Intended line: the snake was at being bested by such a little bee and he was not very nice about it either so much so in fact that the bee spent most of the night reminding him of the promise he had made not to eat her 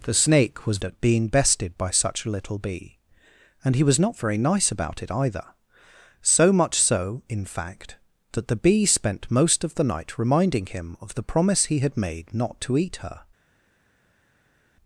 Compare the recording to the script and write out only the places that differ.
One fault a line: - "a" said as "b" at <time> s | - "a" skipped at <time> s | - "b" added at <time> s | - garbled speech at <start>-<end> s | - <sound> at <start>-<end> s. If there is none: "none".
none